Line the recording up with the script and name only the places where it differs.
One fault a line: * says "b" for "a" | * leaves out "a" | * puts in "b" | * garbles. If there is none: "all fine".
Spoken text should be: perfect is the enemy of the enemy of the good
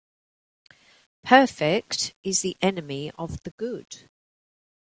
* leaves out "enemy of the"